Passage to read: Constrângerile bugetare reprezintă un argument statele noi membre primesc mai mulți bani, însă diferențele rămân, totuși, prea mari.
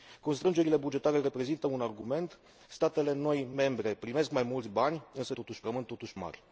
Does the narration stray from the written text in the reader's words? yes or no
yes